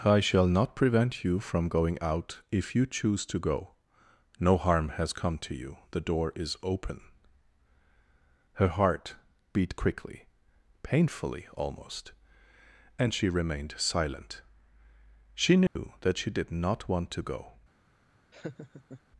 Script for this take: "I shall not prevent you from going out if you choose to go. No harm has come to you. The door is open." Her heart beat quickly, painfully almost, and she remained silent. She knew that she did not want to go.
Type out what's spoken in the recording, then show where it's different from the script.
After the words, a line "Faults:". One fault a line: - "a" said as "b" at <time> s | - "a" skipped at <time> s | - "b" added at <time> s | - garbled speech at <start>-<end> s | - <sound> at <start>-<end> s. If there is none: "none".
"I shall not prevent you from going out if you choose to go. No harm has come to you. The door is open." Her heart beat quickly, painfully almost, and she remained silent. She knew that she did not want to go.
Faults:
- dropout at 15.7-15.8 s
- laugh at 18.3-19.0 s